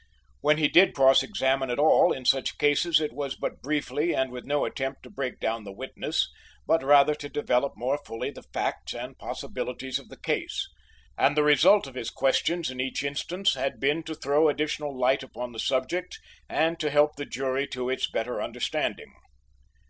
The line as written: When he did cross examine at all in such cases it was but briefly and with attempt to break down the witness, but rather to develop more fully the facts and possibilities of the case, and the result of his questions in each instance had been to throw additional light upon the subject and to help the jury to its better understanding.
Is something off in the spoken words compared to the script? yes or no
yes